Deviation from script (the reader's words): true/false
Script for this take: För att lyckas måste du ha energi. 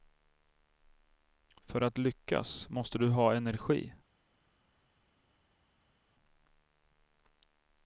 false